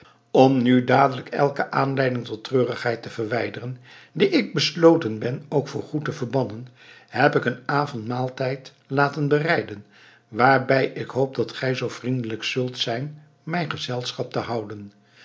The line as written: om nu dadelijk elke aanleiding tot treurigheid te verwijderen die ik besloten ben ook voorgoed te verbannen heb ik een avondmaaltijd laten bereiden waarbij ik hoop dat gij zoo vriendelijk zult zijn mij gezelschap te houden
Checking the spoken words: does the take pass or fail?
pass